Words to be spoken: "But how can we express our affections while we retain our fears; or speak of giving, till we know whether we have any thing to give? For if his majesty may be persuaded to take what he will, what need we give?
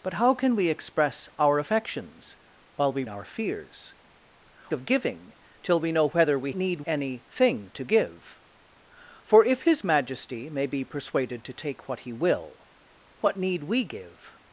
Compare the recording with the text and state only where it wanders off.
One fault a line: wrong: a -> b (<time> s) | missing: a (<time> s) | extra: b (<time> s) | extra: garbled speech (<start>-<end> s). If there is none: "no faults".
missing: retain (3.0 s)
missing: or speak (3.9 s)
wrong: have -> need (6.5 s)